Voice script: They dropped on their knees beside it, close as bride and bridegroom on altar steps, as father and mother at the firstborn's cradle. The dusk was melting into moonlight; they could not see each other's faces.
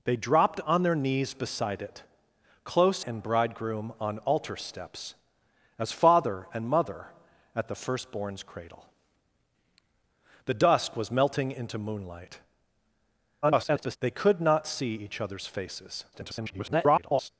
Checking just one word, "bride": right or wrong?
wrong